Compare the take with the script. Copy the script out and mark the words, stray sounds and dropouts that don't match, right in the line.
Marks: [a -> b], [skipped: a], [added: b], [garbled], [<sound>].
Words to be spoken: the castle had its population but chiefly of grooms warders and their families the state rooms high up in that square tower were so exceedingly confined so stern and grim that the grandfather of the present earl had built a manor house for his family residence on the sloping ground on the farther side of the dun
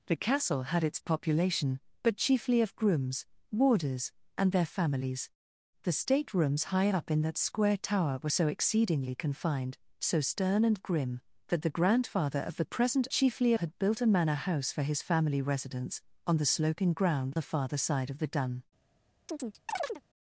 the castle had its population but chiefly of grooms warders and their families the state rooms high up in that square tower were so exceedingly confined so stern and grim that the grandfather of the present [earl -> chiefly] had built a manor house for his family residence on the sloping ground [skipped: on] the farther side of the dun [chirp]